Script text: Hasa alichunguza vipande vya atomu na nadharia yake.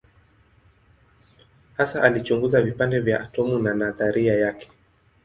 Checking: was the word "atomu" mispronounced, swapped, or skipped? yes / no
no